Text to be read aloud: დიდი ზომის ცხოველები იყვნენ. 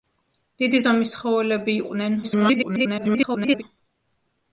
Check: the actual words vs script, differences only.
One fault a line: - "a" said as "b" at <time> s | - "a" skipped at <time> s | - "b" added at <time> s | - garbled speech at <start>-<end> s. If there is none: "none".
- garbled speech at 2.2-3.6 s